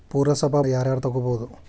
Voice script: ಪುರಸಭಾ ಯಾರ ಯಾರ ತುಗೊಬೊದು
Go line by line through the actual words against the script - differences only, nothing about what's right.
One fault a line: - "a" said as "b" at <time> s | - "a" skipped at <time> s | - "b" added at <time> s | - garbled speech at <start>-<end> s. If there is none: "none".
none